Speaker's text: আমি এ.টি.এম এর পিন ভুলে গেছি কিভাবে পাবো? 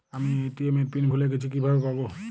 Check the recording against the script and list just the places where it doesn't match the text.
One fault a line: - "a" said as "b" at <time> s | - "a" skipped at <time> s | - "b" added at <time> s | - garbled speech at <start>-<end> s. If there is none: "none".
none